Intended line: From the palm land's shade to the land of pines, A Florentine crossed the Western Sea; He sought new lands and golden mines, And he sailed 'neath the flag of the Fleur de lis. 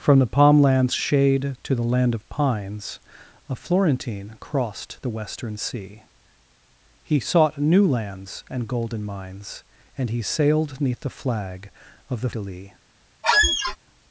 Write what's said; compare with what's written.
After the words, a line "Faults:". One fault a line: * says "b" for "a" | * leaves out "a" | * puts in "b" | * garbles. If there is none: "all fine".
From the palm land's shade to the land of pines, A Florentine crossed the Western Sea; He sought new lands and golden mines, And he sailed 'neath the flag of the De lis.
Faults:
* leaves out "Fleur"